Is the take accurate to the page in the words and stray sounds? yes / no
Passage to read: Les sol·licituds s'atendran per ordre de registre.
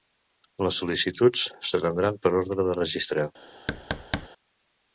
no